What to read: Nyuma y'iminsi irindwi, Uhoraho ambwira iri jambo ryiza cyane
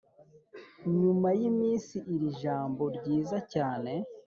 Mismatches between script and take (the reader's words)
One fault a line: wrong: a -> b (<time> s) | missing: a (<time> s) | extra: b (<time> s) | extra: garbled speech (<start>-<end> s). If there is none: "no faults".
missing: irindwi Uhoraho ambwira (1.9 s)